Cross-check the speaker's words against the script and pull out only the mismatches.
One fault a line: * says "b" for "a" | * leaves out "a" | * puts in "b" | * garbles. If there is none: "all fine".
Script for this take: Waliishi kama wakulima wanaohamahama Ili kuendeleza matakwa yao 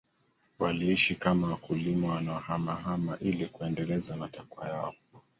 all fine